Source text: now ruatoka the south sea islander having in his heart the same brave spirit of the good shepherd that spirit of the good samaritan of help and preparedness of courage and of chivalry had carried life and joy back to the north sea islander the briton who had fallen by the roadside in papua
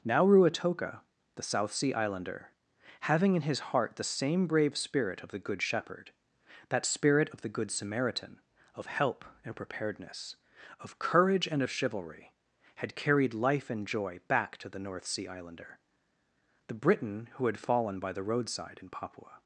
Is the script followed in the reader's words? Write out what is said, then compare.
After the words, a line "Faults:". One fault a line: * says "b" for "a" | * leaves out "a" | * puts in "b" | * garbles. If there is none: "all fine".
now ruatoka the south sea islander having in his heart the same brave spirit of the good shepherd that spirit of the good samaritan of help and preparedness of courage and of chivalry had carried life and joy back to the north sea islander the briton who had fallen by the roadside in papua
Faults:
all fine